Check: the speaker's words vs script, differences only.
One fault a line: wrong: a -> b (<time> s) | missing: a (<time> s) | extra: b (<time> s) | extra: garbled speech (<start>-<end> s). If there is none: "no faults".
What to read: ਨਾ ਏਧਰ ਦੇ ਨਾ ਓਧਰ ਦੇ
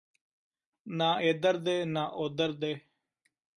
no faults